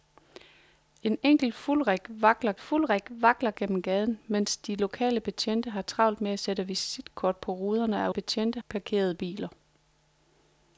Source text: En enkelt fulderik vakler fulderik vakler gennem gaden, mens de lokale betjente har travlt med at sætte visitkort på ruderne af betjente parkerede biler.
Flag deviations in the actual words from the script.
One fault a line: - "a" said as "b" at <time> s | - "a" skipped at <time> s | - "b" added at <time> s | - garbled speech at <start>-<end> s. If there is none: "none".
none